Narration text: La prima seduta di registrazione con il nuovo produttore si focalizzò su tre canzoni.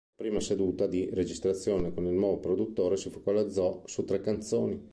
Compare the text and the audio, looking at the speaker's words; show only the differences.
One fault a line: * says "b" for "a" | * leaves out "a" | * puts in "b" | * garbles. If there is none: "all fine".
all fine